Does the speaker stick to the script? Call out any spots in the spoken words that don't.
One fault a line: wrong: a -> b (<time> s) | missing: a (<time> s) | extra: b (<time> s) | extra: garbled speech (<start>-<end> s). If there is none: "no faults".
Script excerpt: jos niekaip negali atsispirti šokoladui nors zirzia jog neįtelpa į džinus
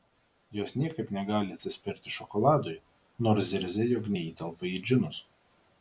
no faults